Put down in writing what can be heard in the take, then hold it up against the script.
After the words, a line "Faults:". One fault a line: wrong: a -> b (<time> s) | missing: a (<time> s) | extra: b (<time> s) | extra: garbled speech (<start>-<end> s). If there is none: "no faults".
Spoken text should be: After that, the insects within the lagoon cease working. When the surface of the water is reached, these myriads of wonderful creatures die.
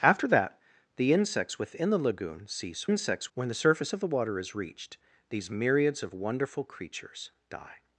After that, the insects within the lagoon cease insects. When the surface of the water is reached, these myriads of wonderful creatures die.
Faults:
wrong: working -> insects (2.8 s)